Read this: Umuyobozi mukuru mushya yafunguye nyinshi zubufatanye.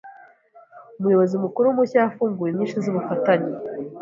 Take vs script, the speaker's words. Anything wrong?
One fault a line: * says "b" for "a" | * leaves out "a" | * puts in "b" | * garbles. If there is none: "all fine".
all fine